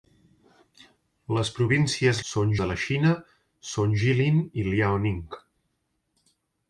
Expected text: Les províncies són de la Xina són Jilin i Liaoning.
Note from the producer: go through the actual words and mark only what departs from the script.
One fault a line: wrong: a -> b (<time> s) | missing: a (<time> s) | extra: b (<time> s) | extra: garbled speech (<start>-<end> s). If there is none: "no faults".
no faults